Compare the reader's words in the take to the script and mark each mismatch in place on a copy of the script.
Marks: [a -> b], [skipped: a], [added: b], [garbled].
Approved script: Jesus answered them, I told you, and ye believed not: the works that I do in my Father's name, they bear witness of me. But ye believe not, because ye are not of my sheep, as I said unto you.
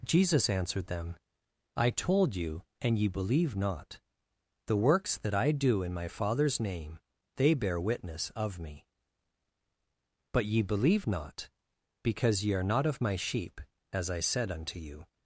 Jesus answered them, I told you, and ye [believed -> believe] not: the works that I do in my Father's name, they bear witness of me. But ye believe not, because ye are not of my sheep, as I said unto you.